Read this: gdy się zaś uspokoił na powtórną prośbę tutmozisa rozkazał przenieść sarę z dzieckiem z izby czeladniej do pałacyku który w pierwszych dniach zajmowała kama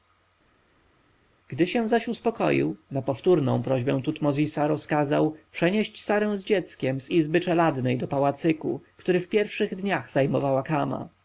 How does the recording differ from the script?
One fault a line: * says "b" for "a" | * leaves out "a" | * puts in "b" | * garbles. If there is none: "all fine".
all fine